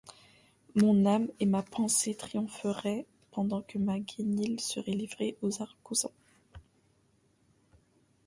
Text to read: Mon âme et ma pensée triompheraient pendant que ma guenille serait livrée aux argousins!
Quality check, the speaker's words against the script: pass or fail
pass